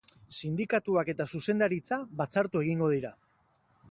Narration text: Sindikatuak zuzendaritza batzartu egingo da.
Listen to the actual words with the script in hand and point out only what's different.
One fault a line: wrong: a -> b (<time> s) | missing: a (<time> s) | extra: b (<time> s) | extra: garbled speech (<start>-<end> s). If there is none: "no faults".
extra: eta (1.1 s)
wrong: da -> dira (3.0 s)